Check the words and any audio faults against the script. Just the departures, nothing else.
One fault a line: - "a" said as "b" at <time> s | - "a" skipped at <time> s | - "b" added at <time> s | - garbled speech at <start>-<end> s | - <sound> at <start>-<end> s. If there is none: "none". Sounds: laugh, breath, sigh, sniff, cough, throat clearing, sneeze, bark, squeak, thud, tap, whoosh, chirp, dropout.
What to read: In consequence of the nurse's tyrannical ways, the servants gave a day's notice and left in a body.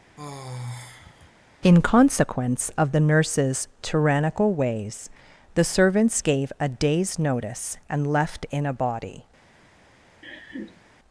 - sigh at 0.2-1.3 s
- laugh at 10.2-10.8 s